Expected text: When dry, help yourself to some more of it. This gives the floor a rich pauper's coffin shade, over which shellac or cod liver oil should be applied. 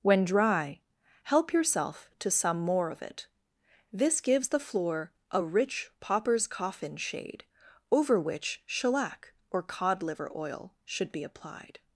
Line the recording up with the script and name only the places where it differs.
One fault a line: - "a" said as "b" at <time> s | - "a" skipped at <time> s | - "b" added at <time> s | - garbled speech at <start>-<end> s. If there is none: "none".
none